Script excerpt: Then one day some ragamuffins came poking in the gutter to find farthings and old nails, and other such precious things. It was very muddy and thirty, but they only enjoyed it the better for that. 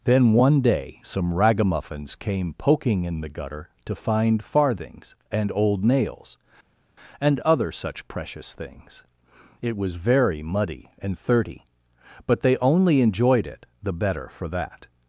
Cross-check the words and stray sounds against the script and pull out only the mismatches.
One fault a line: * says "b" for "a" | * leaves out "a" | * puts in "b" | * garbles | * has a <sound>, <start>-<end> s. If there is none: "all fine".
all fine